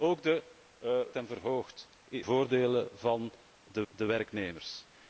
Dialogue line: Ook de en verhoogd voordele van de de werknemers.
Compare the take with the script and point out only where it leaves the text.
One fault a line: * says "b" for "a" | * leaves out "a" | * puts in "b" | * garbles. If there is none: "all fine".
all fine